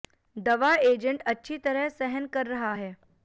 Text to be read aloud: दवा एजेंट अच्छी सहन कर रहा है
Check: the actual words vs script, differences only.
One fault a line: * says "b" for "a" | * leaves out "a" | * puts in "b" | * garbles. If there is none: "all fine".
* puts in "तरह"